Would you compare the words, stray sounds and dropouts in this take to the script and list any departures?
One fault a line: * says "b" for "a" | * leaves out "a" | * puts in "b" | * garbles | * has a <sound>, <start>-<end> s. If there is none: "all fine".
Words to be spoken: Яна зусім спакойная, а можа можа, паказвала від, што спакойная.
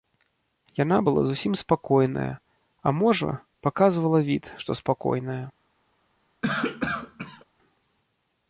* puts in "была"
* leaves out "можа"
* has a cough, 6.4-7.4 s